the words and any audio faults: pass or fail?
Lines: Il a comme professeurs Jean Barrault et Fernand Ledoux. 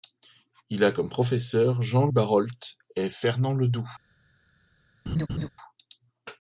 fail